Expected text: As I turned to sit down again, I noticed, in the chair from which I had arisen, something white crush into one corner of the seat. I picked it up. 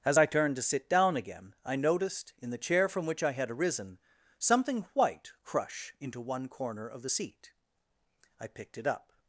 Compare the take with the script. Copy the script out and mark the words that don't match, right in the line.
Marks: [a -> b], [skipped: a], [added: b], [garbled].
As I turned to sit down again, I noticed, in the chair from which I had arisen, something white crush into one corner of the seat. I picked it up.